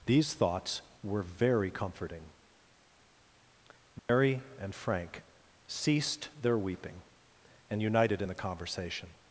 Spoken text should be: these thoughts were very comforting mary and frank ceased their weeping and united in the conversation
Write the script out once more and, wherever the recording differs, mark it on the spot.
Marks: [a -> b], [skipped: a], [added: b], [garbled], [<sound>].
these thoughts were very comforting mary [dropout] and frank ceased their weeping and united in the conversation